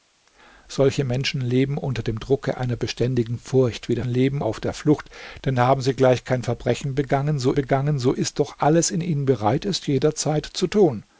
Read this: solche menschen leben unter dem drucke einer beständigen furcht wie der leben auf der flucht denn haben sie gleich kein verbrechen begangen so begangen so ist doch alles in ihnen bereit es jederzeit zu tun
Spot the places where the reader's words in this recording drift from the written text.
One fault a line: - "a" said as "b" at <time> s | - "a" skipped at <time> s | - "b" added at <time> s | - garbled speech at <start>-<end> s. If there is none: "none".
none